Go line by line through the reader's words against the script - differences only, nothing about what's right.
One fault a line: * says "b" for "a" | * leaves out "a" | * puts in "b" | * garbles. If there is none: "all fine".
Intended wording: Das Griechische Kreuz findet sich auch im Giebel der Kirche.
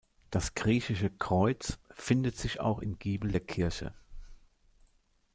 all fine